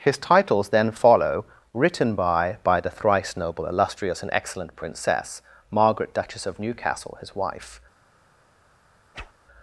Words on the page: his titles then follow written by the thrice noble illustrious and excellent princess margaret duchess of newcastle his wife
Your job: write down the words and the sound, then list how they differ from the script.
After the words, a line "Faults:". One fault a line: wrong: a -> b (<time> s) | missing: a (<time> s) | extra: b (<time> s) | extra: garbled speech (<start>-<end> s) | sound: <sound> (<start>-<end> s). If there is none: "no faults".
his titles then follow written by by the thrice noble illustrious and excellent princess margaret duchess of newcastle his wife
Faults:
extra: by (2.6 s)
sound: whoosh (9.1-9.3 s)